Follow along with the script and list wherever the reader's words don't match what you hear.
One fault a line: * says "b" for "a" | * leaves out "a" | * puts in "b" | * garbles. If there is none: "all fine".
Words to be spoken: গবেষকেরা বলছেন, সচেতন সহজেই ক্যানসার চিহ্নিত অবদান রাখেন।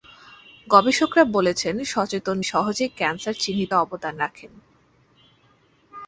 all fine